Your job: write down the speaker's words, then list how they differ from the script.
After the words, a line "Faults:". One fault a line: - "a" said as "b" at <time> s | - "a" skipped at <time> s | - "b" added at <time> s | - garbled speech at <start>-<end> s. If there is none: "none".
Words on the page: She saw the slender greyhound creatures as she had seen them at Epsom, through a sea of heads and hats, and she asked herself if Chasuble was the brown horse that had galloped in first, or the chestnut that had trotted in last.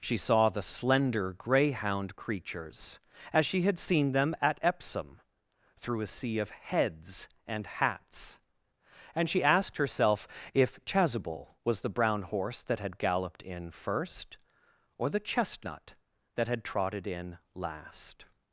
She saw the slender greyhound creatures as she had seen them at Epsom, through a sea of heads and hats, and she asked herself if Chasuble was the brown horse that had galloped in first, or the chestnut that had trotted in last.
Faults:
none